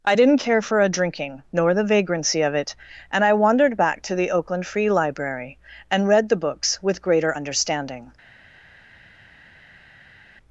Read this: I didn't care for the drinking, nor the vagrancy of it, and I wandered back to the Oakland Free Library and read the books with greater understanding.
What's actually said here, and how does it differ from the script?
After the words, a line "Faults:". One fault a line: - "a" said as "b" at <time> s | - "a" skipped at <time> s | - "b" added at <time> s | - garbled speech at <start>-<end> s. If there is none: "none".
I didn't care for a drinking, nor the vagrancy of it, and I wandered back to the Oakland Free Library and read the books with greater understanding.
Faults:
- "the" said as "a" at 0.8 s